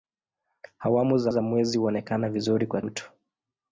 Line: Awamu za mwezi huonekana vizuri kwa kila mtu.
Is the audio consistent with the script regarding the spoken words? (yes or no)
no